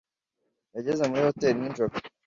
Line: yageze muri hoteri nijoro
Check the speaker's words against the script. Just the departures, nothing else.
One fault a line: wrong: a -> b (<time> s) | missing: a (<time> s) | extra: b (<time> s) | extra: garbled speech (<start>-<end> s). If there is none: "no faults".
no faults